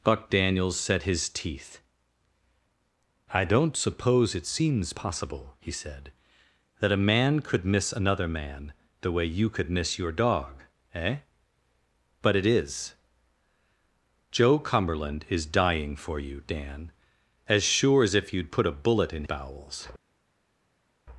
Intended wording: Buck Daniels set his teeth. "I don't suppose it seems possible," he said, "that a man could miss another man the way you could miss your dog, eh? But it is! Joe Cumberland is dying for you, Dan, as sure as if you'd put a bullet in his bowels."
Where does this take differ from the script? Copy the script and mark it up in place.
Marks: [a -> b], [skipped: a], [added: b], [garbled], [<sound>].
Buck Daniels set his teeth. "I don't suppose it seems possible," he said, "that a man could miss another man the way you could miss your dog, eh? But it is! Joe Cumberland is dying for you, Dan, as sure as if you'd put a bullet in [skipped: his] bowels."